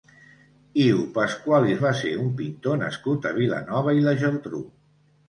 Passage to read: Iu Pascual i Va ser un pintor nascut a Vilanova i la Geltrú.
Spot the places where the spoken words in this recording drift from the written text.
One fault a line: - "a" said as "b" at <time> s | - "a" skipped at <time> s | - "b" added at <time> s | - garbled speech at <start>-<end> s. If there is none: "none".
none